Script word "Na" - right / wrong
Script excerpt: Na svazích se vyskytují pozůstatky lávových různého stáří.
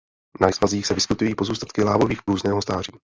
right